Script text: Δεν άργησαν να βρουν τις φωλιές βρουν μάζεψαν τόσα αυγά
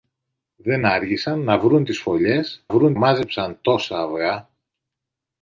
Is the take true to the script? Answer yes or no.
yes